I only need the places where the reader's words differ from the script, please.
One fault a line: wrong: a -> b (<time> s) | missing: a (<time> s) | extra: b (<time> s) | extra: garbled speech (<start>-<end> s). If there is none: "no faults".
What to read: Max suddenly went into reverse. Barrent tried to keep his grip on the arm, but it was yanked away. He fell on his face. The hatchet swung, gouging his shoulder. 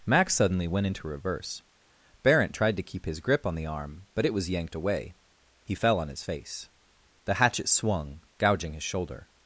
no faults